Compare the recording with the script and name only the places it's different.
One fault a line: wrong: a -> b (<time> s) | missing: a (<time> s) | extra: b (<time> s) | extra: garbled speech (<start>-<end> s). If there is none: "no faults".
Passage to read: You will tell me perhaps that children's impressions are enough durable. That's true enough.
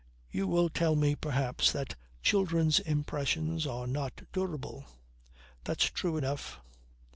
wrong: enough -> not (3.9 s)